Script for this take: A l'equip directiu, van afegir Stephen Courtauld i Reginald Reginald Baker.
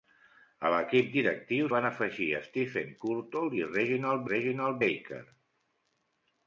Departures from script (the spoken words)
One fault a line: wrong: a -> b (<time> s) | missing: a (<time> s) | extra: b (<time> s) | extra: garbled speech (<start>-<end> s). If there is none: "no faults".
no faults